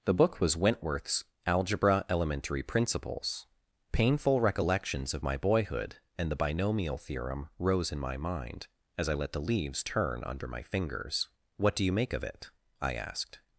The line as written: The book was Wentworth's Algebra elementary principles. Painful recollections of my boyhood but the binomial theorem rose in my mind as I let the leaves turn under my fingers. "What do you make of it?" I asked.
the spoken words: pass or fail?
fail